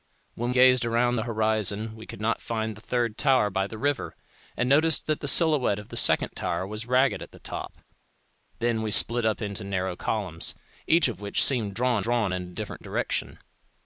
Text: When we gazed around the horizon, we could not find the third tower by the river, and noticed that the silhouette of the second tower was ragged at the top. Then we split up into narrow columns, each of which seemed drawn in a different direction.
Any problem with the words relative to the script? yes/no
yes